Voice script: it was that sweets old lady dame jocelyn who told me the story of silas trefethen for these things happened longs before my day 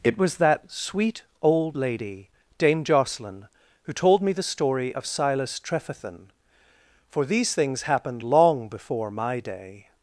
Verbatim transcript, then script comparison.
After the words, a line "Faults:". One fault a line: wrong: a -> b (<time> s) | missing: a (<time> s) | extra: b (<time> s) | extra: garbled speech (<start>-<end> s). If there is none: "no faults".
it was that sweet old lady dame jocelyn who told me the story of silas trefethen for these things happened long before my day
Faults:
wrong: sweets -> sweet (0.7 s)
wrong: longs -> long (8.2 s)